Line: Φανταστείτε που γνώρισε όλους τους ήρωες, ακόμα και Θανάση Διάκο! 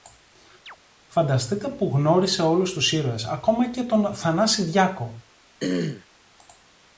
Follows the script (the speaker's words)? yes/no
no